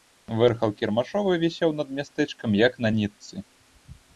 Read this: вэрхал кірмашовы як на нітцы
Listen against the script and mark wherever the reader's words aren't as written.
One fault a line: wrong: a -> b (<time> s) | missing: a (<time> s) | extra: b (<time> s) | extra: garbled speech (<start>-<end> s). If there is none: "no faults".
extra: вісеў над мястэчкам (1.4 s)